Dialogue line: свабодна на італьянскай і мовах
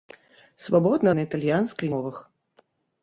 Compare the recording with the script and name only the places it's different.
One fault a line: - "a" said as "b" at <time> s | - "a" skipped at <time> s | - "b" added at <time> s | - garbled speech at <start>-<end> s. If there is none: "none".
none